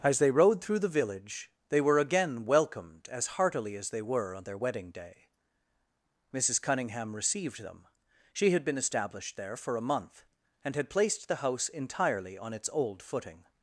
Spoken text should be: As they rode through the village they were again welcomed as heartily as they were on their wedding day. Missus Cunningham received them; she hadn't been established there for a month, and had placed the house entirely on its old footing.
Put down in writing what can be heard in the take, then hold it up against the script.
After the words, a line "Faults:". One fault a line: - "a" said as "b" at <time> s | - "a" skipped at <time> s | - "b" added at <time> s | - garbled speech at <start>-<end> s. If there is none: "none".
As they rode through the village they were again welcomed as heartily as they were on their wedding day. Missus Cunningham received them; she had been established there for a month, and had placed the house entirely on its old footing.
Faults:
- "hadn't" said as "had" at 8.5 s